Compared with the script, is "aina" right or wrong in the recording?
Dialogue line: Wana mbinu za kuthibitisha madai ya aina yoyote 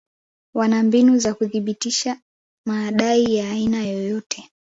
right